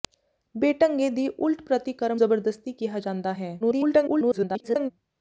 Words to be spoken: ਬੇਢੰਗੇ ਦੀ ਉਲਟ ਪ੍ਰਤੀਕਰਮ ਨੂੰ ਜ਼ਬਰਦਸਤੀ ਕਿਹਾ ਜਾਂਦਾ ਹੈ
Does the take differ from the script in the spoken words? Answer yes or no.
yes